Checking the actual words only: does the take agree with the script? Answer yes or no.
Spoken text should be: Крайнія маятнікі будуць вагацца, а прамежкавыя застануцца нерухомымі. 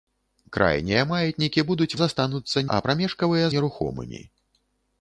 no